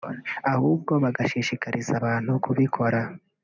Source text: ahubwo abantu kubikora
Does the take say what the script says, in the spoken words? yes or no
no